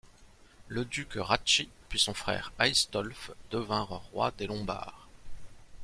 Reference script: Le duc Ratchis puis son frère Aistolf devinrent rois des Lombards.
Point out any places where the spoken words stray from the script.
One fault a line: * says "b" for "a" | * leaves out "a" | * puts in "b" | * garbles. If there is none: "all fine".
all fine